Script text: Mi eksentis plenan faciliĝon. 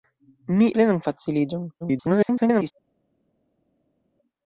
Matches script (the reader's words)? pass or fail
fail